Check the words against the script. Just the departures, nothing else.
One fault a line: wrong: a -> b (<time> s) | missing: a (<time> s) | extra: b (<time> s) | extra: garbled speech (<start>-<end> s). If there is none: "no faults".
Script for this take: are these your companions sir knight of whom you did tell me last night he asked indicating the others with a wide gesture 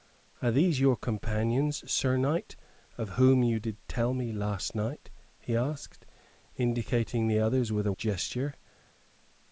missing: wide (7.9 s)